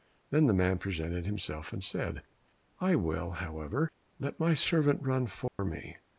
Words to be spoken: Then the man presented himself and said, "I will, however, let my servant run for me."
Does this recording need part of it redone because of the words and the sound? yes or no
yes